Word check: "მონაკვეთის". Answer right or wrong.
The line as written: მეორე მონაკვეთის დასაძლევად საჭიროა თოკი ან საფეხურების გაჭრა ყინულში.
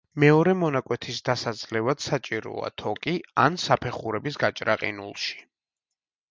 right